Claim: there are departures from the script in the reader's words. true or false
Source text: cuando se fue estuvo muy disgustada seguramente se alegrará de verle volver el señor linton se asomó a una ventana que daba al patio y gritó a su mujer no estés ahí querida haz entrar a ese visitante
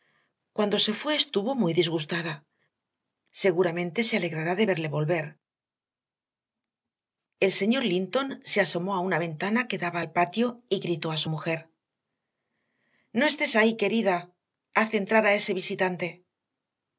false